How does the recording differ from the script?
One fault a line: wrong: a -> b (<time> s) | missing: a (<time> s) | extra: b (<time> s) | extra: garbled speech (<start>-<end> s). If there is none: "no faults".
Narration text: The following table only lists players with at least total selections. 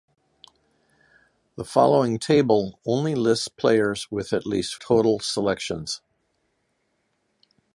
no faults